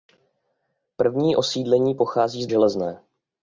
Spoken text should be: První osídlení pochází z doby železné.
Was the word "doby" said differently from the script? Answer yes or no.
yes